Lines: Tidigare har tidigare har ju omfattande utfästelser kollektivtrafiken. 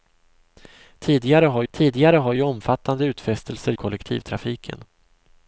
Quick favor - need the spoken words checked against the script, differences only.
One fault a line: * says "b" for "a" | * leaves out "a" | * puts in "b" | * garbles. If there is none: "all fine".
all fine